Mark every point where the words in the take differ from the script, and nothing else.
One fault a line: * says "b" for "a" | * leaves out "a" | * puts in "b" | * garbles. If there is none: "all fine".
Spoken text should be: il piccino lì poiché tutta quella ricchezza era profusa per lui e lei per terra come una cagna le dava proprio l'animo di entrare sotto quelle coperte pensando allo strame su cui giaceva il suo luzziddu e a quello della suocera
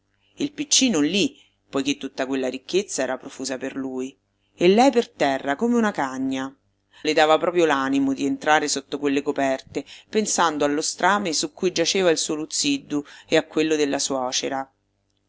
all fine